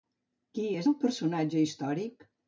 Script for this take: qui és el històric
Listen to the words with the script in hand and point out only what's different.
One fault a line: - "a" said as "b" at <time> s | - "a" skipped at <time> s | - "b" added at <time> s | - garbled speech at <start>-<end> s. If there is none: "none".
- "personatge" added at 1.0 s